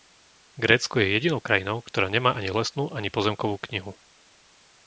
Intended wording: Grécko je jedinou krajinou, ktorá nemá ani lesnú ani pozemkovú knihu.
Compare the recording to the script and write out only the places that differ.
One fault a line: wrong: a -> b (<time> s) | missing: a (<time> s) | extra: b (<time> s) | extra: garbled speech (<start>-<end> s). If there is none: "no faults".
no faults